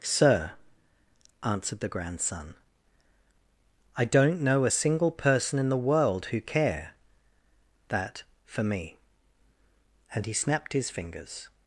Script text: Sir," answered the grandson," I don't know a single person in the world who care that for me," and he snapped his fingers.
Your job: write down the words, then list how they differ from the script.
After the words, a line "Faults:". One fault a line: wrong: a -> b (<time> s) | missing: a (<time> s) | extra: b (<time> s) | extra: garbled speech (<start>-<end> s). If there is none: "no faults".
Sir," answered the grandson," I don't know a single person in the world who care that for me," and he snapped his fingers.
Faults:
no faults